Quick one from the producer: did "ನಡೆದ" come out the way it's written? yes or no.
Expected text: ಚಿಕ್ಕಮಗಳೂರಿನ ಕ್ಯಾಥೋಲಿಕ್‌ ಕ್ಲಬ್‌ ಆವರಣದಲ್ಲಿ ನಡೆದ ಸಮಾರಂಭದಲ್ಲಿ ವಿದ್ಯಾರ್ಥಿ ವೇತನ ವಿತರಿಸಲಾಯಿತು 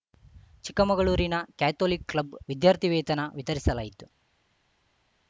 no